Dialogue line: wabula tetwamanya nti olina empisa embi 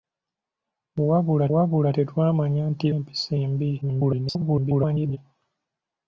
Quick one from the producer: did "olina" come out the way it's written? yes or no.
no